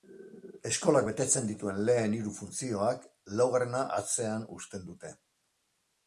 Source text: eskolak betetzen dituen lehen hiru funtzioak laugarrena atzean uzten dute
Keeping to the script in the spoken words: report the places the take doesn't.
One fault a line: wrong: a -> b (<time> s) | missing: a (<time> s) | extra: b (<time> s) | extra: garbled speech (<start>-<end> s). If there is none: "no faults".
no faults